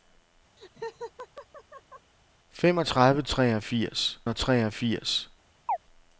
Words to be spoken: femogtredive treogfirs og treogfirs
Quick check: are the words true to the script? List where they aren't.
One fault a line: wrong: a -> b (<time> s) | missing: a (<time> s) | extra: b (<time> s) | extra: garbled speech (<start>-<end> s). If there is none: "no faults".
no faults